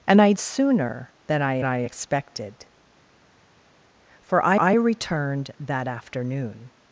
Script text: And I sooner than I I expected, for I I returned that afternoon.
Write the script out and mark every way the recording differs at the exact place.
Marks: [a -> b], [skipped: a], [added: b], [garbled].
And I sooner than I I expected, for I I returned that afternoon.